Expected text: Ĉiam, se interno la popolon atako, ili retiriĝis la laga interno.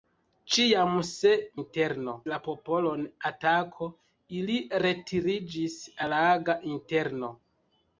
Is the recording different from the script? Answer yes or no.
no